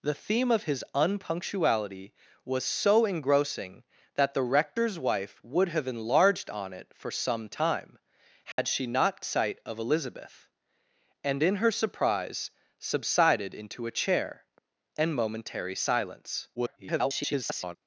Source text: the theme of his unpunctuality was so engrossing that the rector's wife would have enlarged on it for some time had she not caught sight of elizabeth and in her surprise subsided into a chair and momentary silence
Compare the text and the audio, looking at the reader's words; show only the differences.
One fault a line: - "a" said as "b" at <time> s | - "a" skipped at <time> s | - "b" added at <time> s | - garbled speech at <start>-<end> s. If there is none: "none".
- "caught" skipped at 9.2 s
- garbled speech at 16.6-17.8 s